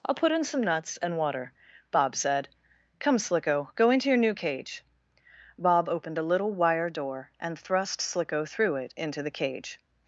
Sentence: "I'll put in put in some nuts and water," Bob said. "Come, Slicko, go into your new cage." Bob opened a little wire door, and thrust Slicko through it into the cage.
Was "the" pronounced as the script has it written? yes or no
yes